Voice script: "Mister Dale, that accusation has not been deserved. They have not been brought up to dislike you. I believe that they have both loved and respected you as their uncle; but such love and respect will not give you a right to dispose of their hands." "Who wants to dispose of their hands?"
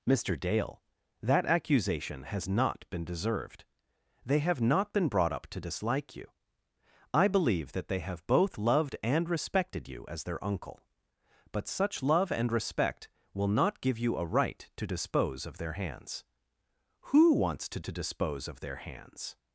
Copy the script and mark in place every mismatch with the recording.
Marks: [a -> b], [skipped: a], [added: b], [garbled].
"Mister Dale, that accusation has not been deserved. They have not been brought up to dislike you. I believe that they have both loved and respected you as their uncle; but such love and respect will not give you a right to dispose of their hands." "Who wants to [added: to] dispose of their hands?"